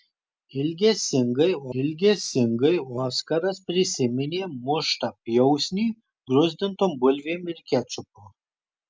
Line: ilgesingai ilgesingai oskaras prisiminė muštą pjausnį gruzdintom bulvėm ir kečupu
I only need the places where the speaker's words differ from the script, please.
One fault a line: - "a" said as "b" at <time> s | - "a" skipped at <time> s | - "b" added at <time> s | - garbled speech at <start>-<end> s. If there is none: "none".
none